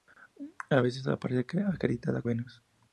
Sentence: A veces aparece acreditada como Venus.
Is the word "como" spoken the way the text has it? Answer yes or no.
no